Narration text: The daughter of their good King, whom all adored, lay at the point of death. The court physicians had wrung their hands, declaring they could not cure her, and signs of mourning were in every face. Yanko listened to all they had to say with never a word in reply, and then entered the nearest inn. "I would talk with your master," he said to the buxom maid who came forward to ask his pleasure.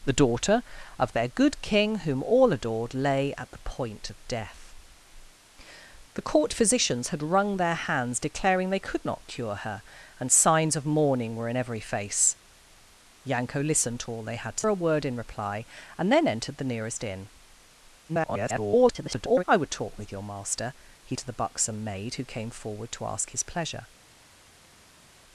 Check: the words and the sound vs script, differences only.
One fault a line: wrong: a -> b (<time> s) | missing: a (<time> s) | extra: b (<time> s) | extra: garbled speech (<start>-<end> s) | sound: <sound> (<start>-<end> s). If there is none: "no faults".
missing: say with never (14.7 s)
extra: garbled speech (18.1-19.4 s)
missing: said (21.2 s)